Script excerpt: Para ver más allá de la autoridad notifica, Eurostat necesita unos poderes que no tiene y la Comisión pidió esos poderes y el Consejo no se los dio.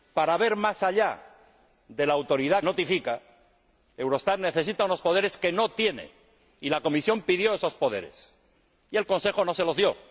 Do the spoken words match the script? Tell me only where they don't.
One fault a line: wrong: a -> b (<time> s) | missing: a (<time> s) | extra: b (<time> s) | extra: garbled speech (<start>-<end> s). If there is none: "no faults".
no faults